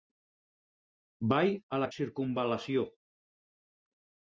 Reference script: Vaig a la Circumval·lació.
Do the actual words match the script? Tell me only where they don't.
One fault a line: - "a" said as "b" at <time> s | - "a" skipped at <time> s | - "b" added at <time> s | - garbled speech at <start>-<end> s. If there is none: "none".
none